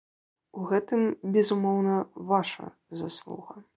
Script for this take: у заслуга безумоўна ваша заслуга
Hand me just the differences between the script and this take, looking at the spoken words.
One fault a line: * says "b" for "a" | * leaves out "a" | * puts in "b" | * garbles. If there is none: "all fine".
* says "гэтым" for "заслуга"